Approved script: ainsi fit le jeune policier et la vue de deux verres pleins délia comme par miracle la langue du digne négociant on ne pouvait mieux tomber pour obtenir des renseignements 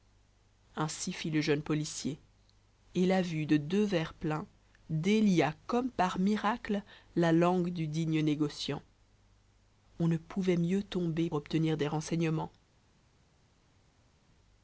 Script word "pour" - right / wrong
wrong